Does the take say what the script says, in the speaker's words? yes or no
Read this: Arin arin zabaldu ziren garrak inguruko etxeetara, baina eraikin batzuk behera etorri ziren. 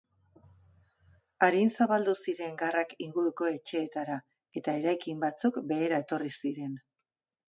no